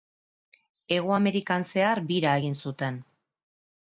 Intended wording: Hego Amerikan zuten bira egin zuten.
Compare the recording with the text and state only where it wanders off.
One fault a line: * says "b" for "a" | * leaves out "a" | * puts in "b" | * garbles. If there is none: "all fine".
* says "zehar" for "zuten"